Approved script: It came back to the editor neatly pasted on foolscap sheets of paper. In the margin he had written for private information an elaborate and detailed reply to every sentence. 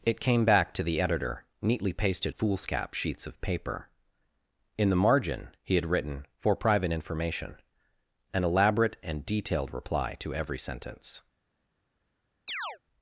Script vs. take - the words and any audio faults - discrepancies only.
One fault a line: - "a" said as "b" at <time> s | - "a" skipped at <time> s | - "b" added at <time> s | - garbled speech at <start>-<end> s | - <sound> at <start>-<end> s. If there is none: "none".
- "on" skipped at 2.4 s
- chirp at 12.5-12.8 s